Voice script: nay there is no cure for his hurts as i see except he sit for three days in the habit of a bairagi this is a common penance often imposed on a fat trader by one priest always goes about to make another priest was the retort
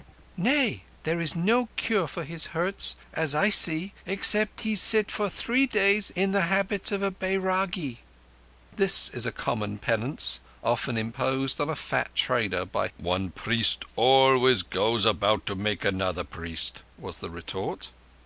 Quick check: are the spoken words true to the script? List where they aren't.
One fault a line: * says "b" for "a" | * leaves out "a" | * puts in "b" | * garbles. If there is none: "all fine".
all fine